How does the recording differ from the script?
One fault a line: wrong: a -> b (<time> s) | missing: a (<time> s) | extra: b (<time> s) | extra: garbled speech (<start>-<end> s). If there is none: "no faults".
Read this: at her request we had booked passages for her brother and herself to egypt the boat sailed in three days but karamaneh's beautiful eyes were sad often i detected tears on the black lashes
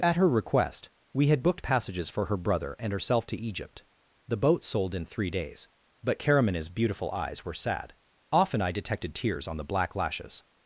wrong: sailed -> sold (4.6 s)